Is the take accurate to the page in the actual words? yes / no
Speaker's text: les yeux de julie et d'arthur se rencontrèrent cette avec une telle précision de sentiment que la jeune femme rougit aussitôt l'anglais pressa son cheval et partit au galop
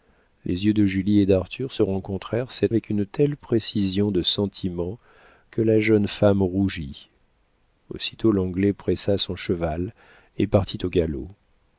yes